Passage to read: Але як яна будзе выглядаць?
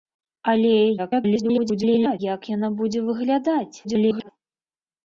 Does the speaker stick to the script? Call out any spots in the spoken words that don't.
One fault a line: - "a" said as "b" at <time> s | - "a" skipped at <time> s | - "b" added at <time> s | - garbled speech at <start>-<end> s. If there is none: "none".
- garbled speech at 1.0-2.2 s
- garbled speech at 3.8-4.3 s